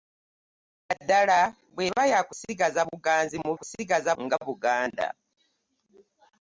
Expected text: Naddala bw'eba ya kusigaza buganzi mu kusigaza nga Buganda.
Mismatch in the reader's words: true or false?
false